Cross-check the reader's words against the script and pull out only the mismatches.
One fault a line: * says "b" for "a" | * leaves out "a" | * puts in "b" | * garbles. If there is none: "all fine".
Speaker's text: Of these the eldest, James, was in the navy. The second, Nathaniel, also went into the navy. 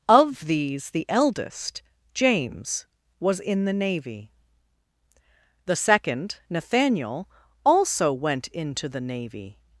all fine